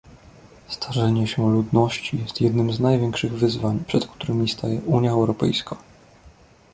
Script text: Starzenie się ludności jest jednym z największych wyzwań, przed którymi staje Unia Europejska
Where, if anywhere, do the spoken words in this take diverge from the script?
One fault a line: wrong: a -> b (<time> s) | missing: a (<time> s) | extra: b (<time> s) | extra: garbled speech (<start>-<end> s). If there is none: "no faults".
no faults